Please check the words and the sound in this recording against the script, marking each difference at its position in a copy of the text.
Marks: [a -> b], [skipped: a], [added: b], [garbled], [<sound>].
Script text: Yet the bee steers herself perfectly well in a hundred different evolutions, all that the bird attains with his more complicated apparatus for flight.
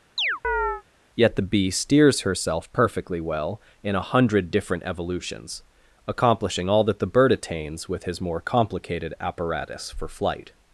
[chirp] Yet the bee steers herself perfectly well in a hundred different evolutions, [added: accomplishing] all that the bird attains with his more complicated apparatus for flight.